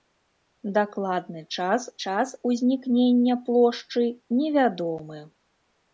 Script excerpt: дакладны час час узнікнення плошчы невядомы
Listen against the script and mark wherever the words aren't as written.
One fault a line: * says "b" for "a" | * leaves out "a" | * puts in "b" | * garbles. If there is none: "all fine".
all fine